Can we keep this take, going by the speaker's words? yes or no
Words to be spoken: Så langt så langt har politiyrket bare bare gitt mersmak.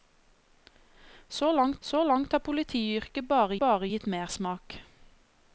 yes